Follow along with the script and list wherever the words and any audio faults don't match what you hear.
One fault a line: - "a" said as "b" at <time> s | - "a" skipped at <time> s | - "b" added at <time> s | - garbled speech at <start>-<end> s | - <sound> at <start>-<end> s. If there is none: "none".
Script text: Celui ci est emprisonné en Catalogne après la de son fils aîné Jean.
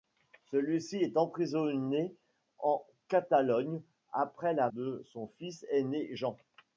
none